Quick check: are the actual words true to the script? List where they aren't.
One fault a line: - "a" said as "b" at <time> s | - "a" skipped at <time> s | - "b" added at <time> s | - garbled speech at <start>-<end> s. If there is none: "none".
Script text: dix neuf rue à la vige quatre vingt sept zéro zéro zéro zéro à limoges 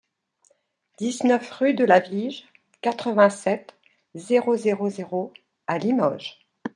- "à" said as "de" at 1.8 s
- "zéro" skipped at 5.3 s